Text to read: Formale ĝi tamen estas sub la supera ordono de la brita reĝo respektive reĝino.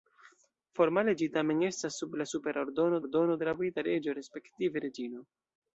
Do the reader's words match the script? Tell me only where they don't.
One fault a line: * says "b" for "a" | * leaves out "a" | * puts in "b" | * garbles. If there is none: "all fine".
* puts in "ordono"